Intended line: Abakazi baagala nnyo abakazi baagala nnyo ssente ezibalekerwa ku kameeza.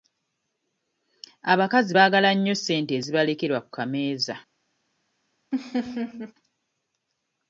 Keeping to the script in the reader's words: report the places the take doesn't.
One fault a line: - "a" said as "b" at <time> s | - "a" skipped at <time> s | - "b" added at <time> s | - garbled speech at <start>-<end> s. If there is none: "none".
- "abakazi baagala nnyo" skipped at 2.5 s